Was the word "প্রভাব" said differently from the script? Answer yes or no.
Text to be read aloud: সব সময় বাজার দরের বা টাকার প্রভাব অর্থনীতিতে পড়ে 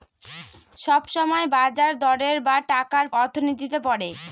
yes